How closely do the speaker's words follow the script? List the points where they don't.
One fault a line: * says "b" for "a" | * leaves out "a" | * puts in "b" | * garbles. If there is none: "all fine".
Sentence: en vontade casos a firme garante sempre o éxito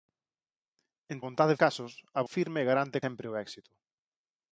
all fine